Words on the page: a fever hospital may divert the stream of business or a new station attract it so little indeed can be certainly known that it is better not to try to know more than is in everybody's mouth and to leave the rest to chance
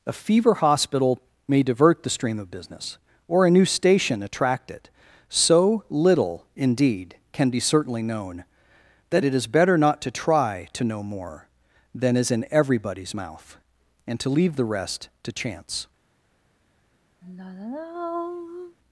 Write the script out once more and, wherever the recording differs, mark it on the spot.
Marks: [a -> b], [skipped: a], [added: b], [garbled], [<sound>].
a fever hospital may divert the stream of business or a new station attract it so little indeed can be certainly known that it is better not to try to know more than is in everybody's mouth and to leave the rest to chance [sigh]